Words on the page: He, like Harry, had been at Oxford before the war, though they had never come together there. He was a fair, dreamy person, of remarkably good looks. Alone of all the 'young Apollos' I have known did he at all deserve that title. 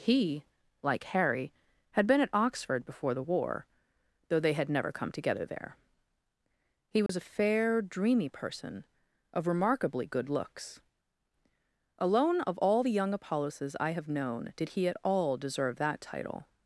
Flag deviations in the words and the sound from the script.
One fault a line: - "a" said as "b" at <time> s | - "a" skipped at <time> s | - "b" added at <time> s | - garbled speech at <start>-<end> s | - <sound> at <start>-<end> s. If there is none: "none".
- dropout at 7.1-7.1 s